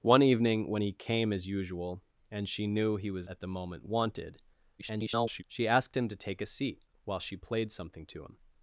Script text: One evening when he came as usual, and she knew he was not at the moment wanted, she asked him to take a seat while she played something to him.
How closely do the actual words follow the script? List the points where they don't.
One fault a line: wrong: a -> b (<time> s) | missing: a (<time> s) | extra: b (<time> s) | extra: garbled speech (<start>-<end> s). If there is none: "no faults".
missing: not (3.3 s)
extra: garbled speech (4.8-5.4 s)